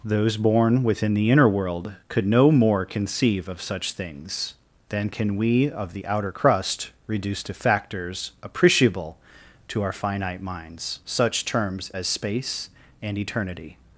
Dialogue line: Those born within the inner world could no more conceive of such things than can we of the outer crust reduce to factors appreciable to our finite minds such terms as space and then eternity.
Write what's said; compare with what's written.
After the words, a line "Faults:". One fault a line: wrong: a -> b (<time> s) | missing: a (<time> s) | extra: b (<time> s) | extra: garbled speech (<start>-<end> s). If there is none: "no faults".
Those born within the inner world could no more conceive of such things than can we of the outer crust reduce to factors appreciable to our finite minds such terms as space and eternity.
Faults:
missing: then (13.2 s)